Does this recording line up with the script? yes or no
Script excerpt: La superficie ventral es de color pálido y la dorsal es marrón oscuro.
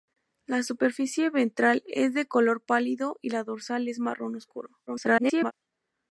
no